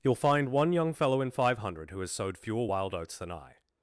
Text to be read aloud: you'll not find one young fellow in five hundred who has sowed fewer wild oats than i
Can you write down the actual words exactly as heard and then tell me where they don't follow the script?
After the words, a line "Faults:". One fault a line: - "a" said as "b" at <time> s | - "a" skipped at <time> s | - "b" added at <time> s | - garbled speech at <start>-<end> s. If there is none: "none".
you'll find one young fellow in five hundred who has sowed fewer wild oats than i
Faults:
- "not" skipped at 0.1 s